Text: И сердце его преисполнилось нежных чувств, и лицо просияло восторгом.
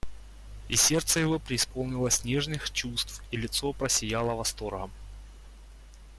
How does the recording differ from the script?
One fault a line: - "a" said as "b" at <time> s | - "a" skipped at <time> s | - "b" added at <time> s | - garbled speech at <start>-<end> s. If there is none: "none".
none